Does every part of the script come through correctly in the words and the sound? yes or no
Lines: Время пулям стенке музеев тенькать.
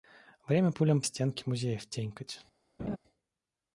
no